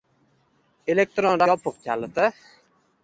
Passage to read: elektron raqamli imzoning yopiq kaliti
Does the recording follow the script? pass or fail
fail